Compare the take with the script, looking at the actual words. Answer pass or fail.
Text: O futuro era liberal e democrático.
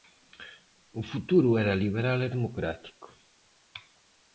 pass